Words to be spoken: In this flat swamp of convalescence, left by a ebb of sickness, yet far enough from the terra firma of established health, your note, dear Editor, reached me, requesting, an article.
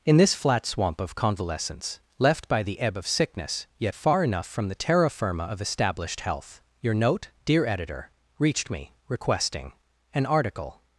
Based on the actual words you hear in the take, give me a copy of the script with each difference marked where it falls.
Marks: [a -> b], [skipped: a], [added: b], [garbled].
In this flat swamp of convalescence, left by [a -> the] ebb of sickness, yet far enough from the terra firma of established health, your note, dear Editor, reached me, requesting, an article.